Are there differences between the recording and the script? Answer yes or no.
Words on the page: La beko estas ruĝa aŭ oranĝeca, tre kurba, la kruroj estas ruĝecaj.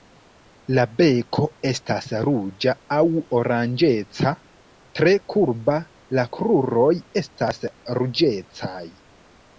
no